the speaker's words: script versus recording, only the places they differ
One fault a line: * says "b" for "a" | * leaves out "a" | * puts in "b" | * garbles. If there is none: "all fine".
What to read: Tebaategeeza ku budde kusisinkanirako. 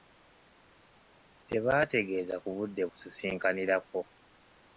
all fine